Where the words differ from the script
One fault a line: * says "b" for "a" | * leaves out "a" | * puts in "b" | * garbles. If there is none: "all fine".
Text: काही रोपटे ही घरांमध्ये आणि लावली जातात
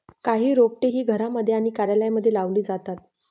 * puts in "कार्यालयांमध्ये"